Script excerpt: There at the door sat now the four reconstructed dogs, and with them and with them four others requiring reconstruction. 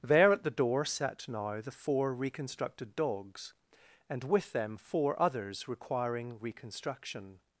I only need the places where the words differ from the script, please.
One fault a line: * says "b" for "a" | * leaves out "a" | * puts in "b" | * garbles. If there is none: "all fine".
* leaves out "and with them"